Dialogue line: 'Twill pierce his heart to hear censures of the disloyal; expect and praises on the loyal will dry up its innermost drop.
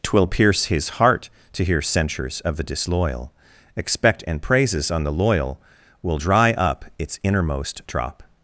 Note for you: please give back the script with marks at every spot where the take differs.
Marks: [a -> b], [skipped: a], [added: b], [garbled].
'Twill pierce his heart to hear censures of the disloyal; expect and praises on the loyal will dry up its innermost drop.